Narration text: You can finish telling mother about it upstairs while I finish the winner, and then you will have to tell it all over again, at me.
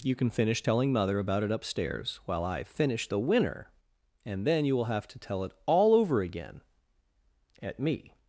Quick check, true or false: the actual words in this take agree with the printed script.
true